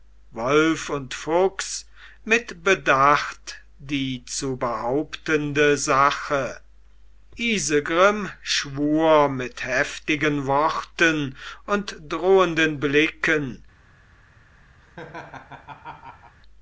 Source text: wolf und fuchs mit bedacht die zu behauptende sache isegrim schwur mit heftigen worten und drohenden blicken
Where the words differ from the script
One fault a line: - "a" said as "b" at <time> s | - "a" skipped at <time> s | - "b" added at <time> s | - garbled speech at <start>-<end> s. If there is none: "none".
none